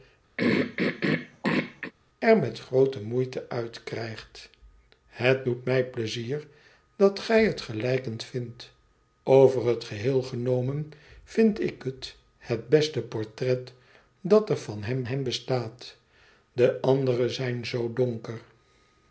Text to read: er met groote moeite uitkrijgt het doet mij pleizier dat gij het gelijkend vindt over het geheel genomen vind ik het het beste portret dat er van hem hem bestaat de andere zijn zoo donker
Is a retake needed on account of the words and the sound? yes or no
yes